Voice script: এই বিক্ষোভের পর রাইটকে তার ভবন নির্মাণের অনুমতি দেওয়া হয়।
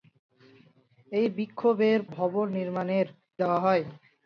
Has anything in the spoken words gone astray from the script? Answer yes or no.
yes